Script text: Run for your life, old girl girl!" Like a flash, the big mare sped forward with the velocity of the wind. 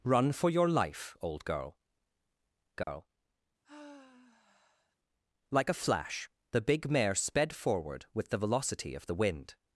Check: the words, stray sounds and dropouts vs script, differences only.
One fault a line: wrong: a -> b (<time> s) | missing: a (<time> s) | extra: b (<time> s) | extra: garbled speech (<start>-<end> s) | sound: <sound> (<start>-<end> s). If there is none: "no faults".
sound: dropout (2.8-2.9 s)
sound: sigh (3.6-5.0 s)